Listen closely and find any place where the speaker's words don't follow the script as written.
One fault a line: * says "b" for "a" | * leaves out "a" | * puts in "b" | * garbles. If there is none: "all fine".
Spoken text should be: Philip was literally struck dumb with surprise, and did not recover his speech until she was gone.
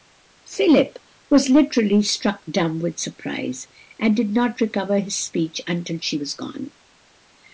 all fine